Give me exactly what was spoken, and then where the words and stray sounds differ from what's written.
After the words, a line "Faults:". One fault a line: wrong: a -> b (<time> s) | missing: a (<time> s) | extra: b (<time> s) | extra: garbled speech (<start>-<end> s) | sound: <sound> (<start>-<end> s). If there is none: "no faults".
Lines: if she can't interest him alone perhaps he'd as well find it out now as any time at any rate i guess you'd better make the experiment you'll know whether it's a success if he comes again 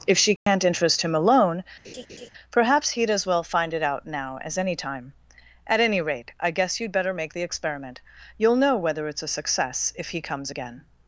if she can't interest him alone perhaps he'd as well find it out now as any time at any rate i guess you'd better make the experiment you'll know whether it's a success if he comes again
Faults:
sound: dropout (0.4-0.5 s)
sound: laugh (1.8-2.3 s)